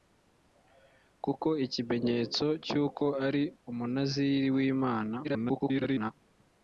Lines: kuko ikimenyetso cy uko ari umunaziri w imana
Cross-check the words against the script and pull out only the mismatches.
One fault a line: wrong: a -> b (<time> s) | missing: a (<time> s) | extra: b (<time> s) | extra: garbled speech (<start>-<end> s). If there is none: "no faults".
extra: garbled speech (5.2-6.1 s)